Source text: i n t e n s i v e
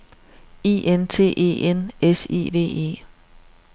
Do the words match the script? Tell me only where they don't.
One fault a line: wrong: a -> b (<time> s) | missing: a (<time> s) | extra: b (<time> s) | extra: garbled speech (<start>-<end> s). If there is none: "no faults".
no faults